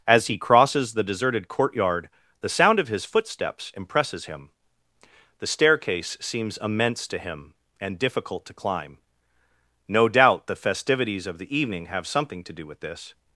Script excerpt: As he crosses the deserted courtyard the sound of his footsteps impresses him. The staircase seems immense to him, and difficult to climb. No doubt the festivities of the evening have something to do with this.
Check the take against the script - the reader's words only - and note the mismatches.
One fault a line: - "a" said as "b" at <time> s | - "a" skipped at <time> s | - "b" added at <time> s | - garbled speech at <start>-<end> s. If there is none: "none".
none